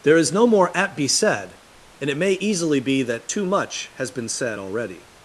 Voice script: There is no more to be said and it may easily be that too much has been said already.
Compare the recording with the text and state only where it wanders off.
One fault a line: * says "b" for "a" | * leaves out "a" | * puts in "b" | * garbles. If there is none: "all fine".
* says "at" for "to"